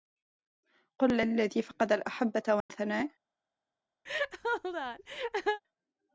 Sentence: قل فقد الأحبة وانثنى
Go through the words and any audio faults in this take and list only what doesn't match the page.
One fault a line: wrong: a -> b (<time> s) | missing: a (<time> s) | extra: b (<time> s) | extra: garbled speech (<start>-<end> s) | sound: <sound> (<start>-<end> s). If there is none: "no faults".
extra: للذي (1.2 s)
sound: dropout (2.6-2.7 s)
sound: laugh (4.1-5.6 s)